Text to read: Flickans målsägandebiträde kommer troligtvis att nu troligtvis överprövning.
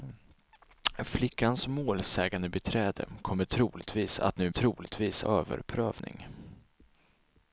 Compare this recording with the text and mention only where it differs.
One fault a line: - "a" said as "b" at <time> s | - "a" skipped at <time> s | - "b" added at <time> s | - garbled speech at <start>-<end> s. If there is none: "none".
none